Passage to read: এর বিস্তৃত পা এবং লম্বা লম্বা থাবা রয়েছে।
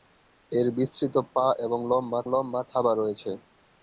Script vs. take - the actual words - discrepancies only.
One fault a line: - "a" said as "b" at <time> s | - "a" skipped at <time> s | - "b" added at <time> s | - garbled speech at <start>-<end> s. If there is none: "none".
none